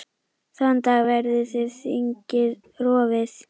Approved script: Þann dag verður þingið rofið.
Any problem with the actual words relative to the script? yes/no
no